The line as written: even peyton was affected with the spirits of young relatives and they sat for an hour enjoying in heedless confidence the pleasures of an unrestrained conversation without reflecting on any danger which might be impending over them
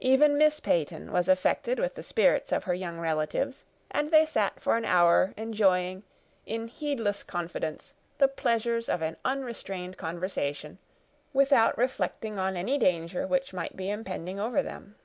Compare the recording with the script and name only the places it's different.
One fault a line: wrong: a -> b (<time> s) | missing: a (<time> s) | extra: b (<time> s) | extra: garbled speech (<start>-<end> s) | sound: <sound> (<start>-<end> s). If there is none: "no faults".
extra: miss (0.3 s)
extra: her (2.6 s)